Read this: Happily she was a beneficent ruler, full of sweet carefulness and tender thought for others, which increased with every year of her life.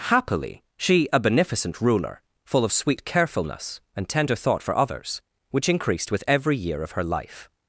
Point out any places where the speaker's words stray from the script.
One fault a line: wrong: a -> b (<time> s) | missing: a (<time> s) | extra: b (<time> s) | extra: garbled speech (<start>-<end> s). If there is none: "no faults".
missing: was (1.1 s)